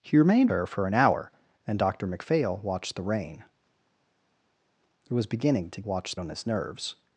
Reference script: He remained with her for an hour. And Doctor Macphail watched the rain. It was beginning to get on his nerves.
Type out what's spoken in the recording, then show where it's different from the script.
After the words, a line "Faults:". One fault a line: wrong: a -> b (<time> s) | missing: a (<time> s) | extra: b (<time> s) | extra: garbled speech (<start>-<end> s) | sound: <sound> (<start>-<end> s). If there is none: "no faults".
He remained her for an hour. And Doctor Macphail watched the rain. It was beginning to watched on his nerves.
Faults:
missing: with (0.5 s)
wrong: get -> watched (5.8 s)